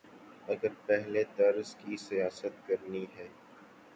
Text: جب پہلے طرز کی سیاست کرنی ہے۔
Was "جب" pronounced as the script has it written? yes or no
no